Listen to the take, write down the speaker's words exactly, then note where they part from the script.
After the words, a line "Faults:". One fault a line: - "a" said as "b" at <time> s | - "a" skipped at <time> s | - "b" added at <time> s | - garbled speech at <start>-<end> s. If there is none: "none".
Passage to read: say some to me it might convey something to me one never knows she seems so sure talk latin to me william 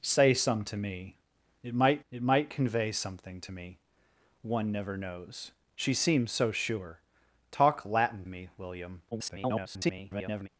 say some to me it might it might convey something to me one never knows she seems so sure talk latin me william [garbled]
Faults:
- "it might" added at 2.1 s
- "to" skipped at 8.2 s
- garbled speech at 9.1-10.5 s